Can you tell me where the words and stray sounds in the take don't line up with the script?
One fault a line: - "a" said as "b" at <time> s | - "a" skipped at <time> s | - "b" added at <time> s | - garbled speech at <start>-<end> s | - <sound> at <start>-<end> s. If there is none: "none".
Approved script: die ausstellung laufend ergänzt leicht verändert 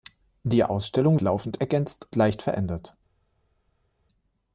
none